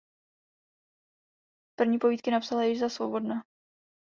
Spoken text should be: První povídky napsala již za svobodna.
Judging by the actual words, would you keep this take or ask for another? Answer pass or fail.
pass